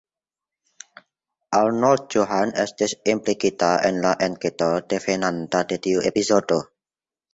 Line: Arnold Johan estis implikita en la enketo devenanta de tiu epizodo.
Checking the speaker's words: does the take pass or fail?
pass